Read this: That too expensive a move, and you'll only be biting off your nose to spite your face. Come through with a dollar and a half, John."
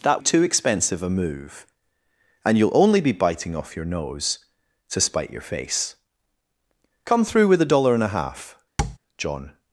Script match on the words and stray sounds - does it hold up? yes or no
no